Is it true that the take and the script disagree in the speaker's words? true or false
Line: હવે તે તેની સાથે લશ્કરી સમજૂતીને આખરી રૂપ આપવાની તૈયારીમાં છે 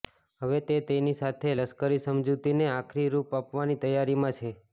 false